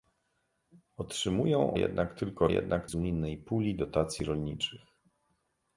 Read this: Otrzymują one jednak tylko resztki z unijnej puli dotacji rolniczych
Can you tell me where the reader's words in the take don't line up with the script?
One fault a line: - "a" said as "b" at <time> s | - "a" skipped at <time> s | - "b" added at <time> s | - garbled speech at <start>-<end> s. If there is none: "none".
- "one" skipped at 1.8 s
- "resztki" said as "jednak" at 2.5 s